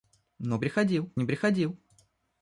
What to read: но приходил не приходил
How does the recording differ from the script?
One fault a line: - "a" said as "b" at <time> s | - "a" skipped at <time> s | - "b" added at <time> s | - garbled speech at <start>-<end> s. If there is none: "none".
none